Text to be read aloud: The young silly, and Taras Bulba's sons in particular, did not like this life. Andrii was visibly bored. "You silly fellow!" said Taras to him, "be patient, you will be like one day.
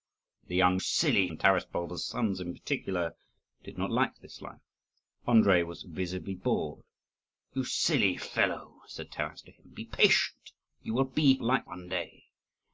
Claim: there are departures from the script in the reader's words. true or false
false